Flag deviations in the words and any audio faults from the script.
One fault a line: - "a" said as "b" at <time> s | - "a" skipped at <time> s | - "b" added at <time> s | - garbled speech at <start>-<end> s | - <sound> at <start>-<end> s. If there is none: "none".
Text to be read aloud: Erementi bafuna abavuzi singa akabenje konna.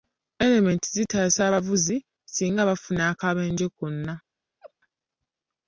- "bafuna" said as "zitaasa" at 0.9 s
- "bafuna" added at 2.7 s
- laugh at 4.6-4.7 s